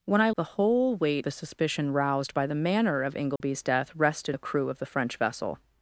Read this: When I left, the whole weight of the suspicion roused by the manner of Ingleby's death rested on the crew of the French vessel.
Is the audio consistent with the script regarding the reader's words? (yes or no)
no